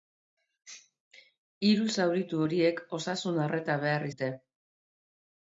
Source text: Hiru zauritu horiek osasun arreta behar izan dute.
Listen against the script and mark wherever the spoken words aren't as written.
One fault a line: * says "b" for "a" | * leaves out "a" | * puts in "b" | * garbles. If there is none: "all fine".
* leaves out "izan"